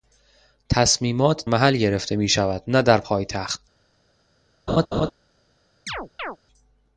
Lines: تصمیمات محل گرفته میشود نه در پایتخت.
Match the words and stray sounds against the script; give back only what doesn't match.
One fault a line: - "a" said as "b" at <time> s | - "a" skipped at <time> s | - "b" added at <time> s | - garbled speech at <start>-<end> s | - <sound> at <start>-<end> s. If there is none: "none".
- laugh at 4.7-5.1 s
- chirp at 5.9-6.4 s